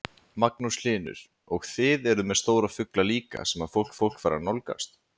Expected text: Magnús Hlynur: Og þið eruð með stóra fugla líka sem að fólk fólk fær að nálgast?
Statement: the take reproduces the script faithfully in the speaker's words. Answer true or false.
true